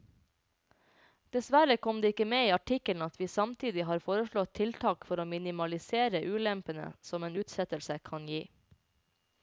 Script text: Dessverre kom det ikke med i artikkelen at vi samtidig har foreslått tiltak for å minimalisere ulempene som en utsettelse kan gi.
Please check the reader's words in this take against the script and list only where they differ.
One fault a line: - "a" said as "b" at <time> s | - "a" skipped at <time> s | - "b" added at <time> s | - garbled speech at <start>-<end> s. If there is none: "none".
none